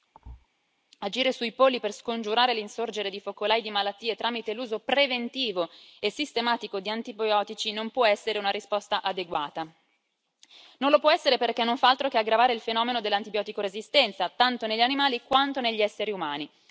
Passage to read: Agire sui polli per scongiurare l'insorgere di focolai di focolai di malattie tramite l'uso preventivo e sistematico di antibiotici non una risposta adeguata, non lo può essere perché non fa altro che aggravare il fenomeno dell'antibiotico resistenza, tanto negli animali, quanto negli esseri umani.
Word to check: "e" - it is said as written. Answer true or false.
true